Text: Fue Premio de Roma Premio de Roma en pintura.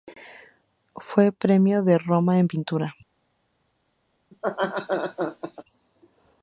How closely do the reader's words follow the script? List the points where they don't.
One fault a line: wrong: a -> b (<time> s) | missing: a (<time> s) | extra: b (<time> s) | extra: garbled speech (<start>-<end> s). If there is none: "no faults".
missing: Premio de Roma (2.4 s)